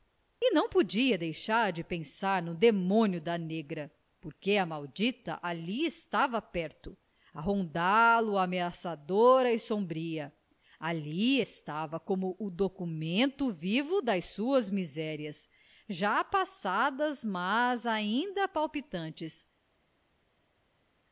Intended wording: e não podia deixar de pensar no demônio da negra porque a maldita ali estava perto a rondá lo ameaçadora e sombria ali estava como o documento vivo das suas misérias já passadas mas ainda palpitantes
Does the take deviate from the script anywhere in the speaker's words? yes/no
no